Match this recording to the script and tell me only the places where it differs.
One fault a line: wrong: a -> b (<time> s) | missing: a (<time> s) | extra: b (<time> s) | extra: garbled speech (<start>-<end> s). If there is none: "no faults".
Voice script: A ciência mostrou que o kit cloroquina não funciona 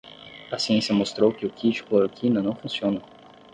no faults